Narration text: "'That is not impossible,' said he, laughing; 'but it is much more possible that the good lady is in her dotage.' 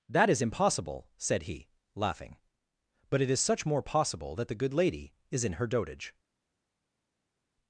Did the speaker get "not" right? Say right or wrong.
wrong